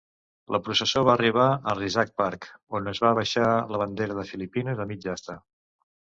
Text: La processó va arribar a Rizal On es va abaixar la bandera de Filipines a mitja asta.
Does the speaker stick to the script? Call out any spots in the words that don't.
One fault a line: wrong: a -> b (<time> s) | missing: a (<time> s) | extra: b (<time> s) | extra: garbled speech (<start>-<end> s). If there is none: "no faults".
extra: Park (2.2 s)